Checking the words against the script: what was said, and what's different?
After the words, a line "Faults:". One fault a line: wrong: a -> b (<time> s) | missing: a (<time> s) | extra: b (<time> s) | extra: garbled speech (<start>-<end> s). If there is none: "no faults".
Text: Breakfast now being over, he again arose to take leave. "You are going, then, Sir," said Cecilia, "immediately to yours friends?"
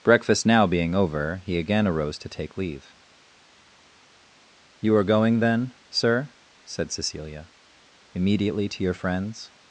Breakfast now being over, he again arose to take leave. "You are going, then, Sir," said Cecilia, "immediately to your friends?"
Faults:
wrong: yours -> your (8.8 s)